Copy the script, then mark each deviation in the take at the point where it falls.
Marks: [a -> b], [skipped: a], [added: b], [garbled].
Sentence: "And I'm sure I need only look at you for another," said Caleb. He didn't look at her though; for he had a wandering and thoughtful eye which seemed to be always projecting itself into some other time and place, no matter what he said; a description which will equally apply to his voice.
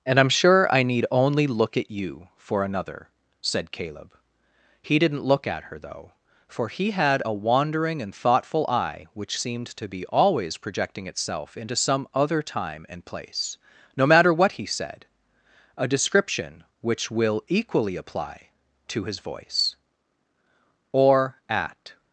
"And I'm sure I need only look at you for another," said Caleb. He didn't look at her though; for he had a wandering and thoughtful eye which seemed to be always projecting itself into some other time and place, no matter what he said; a description which will equally apply to his voice. [added: Or at]